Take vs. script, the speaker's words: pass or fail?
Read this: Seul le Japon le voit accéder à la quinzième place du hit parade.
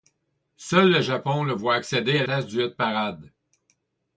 fail